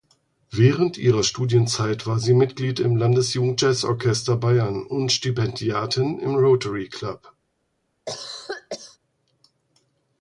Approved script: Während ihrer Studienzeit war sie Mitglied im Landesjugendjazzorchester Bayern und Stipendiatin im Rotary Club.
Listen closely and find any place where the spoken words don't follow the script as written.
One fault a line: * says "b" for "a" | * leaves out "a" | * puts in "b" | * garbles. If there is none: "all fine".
all fine